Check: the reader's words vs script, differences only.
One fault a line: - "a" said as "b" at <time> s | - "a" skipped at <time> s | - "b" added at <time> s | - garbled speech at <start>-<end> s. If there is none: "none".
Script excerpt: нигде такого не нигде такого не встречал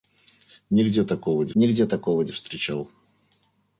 none